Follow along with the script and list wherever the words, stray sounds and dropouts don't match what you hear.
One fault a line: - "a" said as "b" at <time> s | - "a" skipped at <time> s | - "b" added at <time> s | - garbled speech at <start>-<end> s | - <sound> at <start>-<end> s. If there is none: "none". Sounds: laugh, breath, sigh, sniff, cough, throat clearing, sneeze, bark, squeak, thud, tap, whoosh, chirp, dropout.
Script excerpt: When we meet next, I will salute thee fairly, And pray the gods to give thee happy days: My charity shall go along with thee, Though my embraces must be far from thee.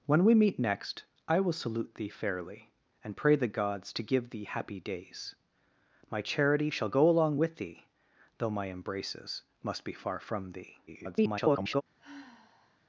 - garbled speech at 10.9-11.8 s
- sigh at 12.0-12.8 s